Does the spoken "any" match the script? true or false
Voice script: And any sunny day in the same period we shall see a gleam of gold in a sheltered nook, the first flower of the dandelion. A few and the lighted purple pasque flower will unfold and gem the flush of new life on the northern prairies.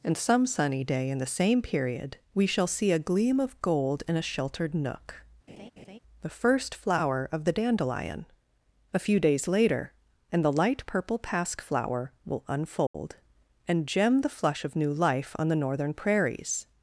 false